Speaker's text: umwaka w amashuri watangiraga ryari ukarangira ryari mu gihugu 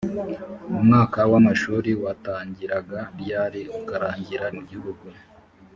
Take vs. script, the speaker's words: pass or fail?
fail